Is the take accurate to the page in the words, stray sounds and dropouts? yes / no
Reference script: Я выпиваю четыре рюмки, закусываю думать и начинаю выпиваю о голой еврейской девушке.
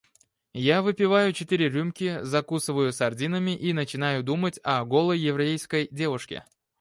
no